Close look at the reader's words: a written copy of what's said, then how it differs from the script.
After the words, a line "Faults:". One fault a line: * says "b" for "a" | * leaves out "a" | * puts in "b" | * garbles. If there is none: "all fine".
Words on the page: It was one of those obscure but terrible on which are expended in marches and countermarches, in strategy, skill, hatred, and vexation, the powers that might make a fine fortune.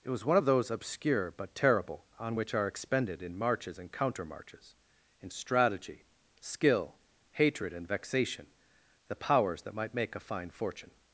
It was one of those obscure but terrible on which are expended in marches and countermarches, in strategy, skill, hatred, and vexation, the powers that might make a fine fortune.
Faults:
all fine